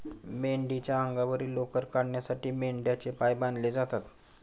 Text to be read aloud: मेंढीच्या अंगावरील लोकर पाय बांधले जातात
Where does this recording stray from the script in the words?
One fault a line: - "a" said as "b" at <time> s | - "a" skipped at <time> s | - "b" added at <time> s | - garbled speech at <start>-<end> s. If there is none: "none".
- "काढण्यासाठी मेंढ्यांचे" added at 1.9 s